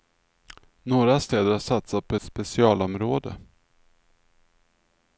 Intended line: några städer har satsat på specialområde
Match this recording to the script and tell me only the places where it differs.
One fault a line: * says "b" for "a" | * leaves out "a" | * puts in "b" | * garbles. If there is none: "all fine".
all fine